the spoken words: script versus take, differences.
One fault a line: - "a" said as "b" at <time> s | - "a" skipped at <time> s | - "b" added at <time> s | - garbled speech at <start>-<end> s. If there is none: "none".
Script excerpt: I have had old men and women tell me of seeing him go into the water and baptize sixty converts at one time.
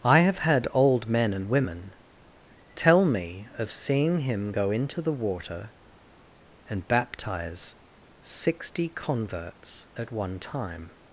none